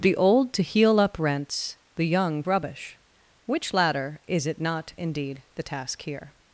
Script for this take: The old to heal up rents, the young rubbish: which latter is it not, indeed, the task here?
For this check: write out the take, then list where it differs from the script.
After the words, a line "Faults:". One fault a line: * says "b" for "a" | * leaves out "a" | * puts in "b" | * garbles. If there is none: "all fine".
The old to heal up rents, the young rubbish: which latter is it not, indeed, the task here?
Faults:
all fine